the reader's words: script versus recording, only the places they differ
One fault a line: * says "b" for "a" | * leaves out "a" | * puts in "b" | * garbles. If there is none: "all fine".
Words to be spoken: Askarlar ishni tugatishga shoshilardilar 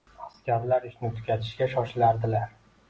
all fine